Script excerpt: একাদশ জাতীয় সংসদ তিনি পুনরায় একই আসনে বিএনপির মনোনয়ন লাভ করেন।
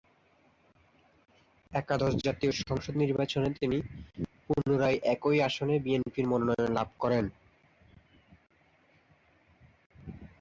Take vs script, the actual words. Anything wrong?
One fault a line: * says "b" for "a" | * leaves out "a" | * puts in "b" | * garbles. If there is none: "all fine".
* puts in "নির্বাচনে"